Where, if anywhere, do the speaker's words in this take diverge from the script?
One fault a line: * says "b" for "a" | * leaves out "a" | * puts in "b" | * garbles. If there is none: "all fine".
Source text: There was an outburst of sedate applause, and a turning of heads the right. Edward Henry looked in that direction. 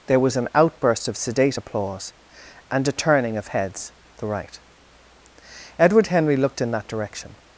all fine